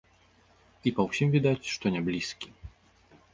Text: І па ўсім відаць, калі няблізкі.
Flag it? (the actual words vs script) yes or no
yes